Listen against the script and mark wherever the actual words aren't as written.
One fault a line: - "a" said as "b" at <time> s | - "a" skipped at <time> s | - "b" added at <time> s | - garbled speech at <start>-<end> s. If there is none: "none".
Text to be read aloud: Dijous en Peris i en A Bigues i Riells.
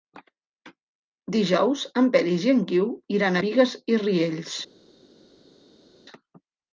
- "Guiu iran" added at 2.7 s